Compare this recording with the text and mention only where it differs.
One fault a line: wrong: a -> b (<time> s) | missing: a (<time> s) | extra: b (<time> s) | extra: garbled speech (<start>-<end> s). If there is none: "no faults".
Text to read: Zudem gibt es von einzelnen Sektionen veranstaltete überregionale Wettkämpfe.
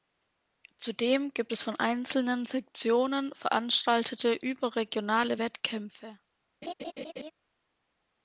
no faults